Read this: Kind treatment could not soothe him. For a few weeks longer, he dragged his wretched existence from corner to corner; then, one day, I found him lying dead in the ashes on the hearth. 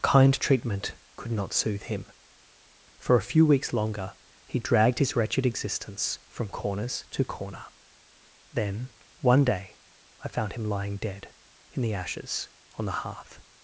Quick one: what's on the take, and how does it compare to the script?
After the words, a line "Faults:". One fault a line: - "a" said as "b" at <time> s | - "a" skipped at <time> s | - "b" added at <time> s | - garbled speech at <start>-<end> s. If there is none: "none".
Kind treatment could not soothe him. For a few weeks longer, he dragged his wretched existence from corners to corner; then, one day, I found him lying dead in the ashes on the hearth.
Faults:
- "corner" said as "corners" at 6.5 s